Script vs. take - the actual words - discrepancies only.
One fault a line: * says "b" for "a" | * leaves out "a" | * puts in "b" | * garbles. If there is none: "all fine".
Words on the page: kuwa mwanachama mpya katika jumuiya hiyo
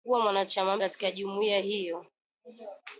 * leaves out "mpya"